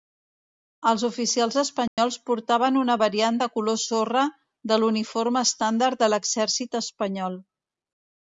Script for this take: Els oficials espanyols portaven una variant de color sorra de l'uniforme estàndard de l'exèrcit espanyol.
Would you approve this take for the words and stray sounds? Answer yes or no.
no